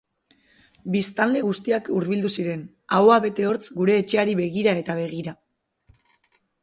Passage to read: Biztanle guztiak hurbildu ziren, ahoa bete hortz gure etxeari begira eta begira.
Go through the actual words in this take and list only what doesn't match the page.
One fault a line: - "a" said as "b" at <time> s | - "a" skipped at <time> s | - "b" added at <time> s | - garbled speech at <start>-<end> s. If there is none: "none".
none